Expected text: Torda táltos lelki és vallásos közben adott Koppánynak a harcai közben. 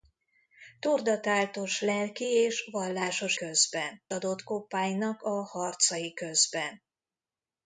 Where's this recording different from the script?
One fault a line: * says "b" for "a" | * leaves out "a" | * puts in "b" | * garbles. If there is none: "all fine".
all fine